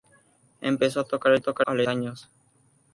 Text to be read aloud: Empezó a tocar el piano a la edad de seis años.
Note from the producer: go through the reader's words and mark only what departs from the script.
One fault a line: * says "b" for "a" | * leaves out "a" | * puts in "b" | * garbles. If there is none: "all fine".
* says "tocar" for "piano"
* leaves out "edad de seis"